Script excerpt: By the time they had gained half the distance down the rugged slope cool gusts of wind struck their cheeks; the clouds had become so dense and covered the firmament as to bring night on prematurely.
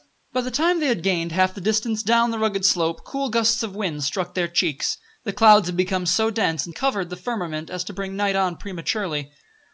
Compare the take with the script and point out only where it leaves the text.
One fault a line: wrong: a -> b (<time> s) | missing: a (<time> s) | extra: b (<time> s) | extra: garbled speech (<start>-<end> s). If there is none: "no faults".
no faults